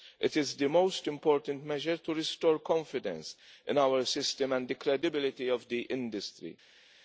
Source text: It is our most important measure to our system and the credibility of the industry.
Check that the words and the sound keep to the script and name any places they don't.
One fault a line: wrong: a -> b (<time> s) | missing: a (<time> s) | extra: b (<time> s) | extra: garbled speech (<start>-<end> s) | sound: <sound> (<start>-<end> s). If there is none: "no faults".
wrong: our -> the (0.6 s)
extra: restore confidence in (2.1 s)